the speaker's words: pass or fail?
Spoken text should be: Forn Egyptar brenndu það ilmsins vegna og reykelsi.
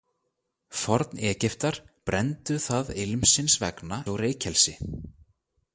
pass